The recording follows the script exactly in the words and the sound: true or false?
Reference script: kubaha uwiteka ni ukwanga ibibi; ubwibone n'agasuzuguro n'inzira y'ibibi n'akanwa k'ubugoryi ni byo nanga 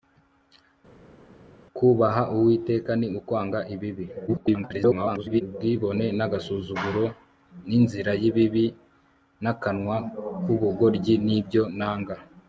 false